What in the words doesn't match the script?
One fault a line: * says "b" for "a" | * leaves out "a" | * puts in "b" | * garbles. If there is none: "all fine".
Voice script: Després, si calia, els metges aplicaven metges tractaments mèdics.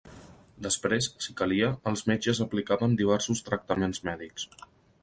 * says "diversos" for "metges"